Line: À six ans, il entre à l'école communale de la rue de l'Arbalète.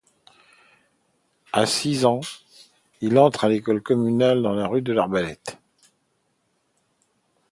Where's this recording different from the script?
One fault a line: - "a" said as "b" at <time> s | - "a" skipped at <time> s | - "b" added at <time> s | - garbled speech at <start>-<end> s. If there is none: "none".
none